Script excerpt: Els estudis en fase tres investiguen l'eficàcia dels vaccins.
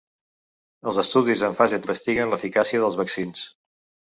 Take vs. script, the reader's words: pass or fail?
fail